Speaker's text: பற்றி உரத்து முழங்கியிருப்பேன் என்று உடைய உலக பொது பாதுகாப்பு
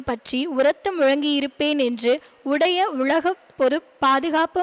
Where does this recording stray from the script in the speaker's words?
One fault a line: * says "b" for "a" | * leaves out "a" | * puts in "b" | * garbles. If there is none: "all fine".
all fine